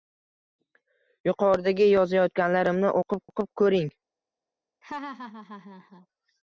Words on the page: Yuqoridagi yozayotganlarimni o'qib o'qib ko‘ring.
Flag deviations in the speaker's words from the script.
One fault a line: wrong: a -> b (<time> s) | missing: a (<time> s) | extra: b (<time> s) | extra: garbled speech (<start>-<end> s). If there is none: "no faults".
no faults